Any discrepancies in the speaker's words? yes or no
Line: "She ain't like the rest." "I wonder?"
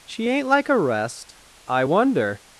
yes